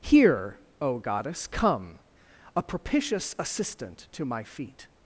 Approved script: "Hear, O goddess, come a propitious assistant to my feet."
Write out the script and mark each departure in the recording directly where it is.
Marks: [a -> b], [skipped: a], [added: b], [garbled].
"Hear, O goddess, come a propitious assistant to my feet."